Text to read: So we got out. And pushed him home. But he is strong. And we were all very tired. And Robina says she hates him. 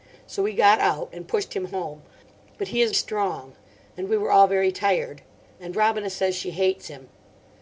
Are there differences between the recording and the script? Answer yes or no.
no